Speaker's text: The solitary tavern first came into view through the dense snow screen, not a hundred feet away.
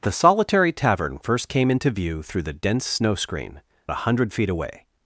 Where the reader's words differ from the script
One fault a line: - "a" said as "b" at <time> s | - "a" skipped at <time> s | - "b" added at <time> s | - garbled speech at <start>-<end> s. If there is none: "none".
- "not" skipped at 3.6 s